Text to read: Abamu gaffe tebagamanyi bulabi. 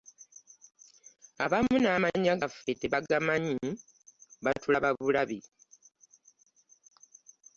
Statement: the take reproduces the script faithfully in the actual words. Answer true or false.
false